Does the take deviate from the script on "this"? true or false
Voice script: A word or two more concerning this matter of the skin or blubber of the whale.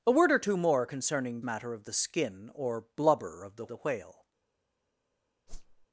true